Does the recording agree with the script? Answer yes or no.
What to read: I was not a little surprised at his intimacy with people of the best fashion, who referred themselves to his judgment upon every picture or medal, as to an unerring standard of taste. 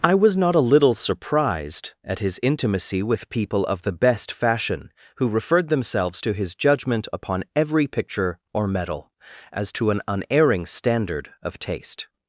yes